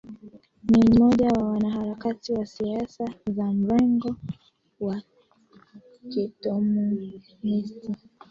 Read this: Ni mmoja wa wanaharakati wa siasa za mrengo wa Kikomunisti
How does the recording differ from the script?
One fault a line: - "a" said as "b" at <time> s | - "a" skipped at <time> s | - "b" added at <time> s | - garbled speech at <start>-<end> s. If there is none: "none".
none